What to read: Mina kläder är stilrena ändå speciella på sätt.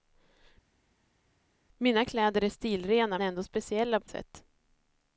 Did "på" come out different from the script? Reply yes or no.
no